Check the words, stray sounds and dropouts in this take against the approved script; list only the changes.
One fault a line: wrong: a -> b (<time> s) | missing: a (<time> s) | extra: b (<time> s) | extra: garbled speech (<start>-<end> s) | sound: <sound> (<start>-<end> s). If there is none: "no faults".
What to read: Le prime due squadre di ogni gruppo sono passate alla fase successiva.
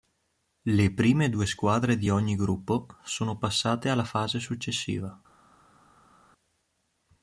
no faults